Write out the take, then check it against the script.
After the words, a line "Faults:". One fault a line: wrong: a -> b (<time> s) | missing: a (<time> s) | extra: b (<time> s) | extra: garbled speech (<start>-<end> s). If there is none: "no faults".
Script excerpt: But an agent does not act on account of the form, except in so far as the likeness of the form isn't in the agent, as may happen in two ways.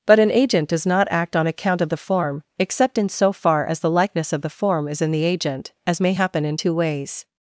But an agent does not act on account of the form, except in so far as the likeness of the form is in the agent, as may happen in two ways.
Faults:
wrong: isn't -> is (4.9 s)